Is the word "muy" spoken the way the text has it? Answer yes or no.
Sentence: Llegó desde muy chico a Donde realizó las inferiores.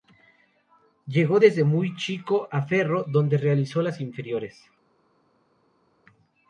yes